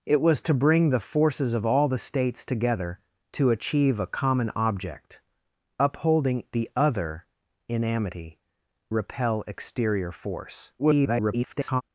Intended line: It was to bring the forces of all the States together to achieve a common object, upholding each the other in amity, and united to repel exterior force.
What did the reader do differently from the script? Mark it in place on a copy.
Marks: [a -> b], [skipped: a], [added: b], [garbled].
It was to bring the forces of all the States together to achieve a common object, upholding [skipped: each] the other in amity, [skipped: and united to] repel exterior force. [garbled]